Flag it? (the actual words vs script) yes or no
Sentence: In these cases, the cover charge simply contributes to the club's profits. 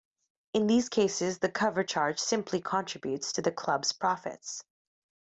no